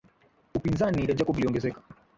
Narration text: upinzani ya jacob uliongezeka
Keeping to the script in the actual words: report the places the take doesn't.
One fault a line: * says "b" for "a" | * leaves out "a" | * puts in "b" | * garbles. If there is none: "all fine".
all fine